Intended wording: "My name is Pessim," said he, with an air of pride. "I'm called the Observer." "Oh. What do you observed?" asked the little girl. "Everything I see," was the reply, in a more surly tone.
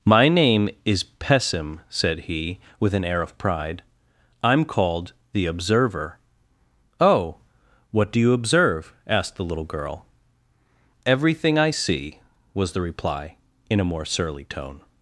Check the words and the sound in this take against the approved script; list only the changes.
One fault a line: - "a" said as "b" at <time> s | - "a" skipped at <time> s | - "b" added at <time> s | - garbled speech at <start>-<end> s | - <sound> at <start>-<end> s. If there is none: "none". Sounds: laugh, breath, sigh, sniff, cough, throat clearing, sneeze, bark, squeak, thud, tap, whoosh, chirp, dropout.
- "observed" said as "observe" at 8.3 s